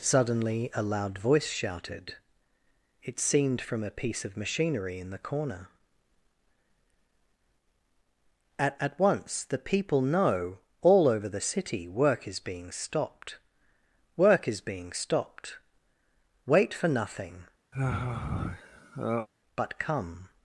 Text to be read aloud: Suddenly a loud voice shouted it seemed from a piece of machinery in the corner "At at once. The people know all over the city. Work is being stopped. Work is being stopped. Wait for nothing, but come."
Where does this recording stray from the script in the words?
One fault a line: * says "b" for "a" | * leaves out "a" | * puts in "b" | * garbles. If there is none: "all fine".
all fine